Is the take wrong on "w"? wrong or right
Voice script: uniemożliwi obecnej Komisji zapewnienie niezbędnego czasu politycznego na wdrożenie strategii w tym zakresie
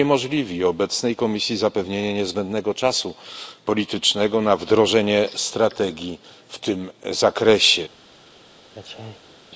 right